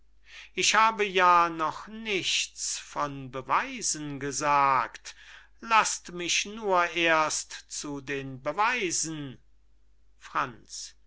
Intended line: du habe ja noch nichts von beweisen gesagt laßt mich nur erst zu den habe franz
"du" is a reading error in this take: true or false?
true